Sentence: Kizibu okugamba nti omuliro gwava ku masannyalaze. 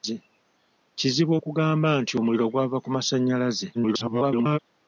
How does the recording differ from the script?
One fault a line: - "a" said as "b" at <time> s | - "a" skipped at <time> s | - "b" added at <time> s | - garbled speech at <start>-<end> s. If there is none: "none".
- garbled speech at 3.7-4.6 s